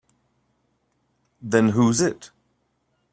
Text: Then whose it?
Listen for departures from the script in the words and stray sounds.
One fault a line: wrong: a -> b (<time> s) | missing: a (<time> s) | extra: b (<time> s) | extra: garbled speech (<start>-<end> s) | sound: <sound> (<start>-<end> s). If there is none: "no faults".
no faults